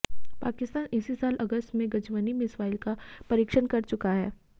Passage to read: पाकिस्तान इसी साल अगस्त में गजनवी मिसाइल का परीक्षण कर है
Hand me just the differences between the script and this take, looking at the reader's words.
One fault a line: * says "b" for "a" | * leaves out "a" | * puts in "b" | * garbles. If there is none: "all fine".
* puts in "चुका"